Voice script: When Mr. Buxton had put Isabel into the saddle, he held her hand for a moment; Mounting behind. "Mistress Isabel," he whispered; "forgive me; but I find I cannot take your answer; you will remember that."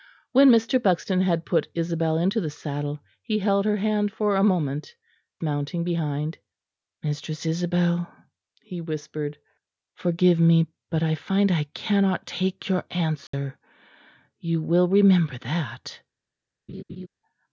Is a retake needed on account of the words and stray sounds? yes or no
yes